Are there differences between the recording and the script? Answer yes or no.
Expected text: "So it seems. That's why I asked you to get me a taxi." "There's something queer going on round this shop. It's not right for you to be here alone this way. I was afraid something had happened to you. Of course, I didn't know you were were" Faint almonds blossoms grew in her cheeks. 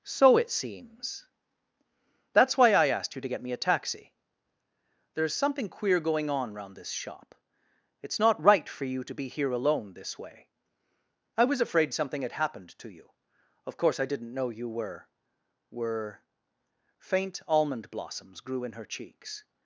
yes